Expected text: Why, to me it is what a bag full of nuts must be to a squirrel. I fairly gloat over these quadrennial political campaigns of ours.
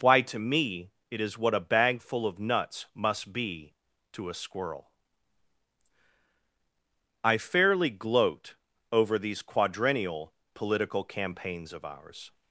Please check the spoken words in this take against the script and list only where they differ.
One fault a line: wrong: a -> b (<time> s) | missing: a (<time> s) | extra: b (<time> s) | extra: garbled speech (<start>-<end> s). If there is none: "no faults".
no faults